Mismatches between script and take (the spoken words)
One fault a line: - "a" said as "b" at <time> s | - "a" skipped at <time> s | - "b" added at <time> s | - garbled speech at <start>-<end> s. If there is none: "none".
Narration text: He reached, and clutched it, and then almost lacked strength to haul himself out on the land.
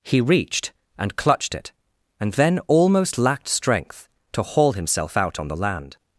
none